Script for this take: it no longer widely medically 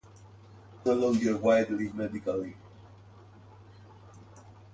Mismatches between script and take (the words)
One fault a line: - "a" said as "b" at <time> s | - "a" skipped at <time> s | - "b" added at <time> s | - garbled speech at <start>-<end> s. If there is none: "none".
none